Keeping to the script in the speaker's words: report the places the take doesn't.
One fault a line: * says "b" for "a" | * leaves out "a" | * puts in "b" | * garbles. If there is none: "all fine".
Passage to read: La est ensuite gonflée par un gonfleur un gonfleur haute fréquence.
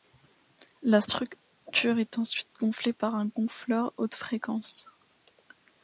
* puts in "structure"
* leaves out "un gonfleur"